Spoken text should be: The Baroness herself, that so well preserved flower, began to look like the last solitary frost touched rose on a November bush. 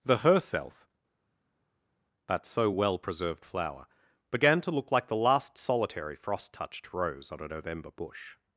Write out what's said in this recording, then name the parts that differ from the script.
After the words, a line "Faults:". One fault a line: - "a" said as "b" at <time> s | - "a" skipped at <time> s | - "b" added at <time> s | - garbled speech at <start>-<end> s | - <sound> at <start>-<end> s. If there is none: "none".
The herself, that so well preserved flower, began to look like the last solitary frost touched rose on a November bush.
Faults:
- "Baroness" skipped at 0.2 s